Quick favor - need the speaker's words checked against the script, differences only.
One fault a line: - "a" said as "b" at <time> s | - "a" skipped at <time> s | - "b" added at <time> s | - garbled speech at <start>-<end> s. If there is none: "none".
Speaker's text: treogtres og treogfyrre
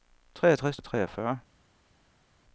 none